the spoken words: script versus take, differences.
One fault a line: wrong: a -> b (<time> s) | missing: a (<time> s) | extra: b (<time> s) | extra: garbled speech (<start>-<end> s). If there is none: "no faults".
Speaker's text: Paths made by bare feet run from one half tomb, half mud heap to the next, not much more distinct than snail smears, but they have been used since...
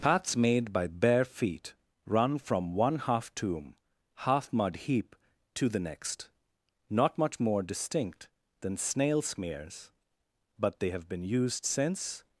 no faults